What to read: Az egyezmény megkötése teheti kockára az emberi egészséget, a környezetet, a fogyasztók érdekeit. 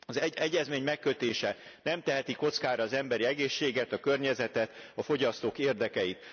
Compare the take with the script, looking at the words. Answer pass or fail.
fail